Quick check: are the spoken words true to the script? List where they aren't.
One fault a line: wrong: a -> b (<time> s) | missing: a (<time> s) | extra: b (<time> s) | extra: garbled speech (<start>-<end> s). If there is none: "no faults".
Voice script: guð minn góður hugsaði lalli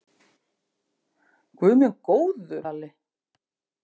missing: hugsaði (2.6 s)